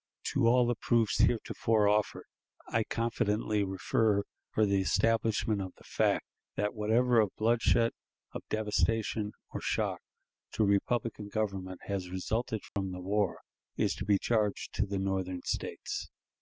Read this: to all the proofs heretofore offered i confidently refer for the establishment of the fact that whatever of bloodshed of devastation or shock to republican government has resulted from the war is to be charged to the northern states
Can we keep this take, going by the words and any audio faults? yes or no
no